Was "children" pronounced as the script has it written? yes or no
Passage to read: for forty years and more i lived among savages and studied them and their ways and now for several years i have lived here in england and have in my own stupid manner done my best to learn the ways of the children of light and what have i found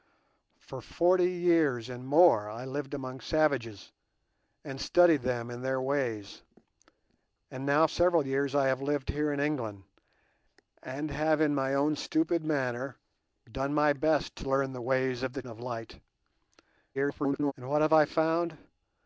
no